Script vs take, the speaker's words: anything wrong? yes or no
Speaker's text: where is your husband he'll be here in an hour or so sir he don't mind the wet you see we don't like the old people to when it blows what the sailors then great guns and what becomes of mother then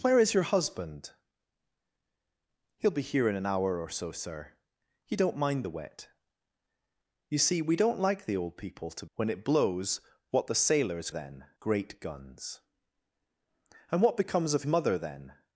no